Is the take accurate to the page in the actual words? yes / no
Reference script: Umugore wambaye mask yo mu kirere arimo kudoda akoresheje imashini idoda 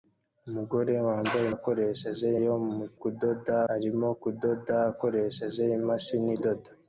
no